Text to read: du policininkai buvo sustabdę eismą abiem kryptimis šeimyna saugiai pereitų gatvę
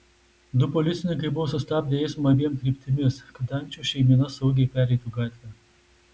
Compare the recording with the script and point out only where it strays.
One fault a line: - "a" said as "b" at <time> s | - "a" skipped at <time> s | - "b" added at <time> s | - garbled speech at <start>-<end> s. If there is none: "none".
- "kad ančių" added at 3.4 s